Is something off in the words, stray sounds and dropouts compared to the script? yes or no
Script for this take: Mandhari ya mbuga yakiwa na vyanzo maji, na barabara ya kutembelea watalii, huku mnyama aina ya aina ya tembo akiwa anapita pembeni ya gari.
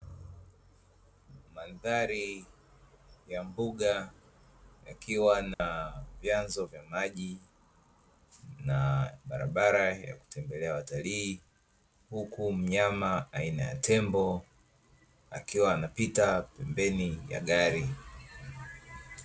yes